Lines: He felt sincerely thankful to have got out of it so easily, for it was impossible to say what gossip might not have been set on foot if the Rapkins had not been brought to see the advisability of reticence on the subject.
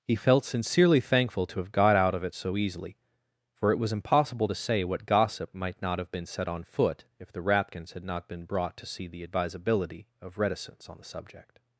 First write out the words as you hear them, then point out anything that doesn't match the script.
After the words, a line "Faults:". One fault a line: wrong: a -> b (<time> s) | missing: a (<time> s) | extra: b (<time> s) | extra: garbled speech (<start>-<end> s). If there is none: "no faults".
He felt sincerely thankful to have got out of it so easily, for it was impossible to say what gossip might not have been set on foot if the Rapkins had not been brought to see the advisability of reticence on the subject.
Faults:
no faults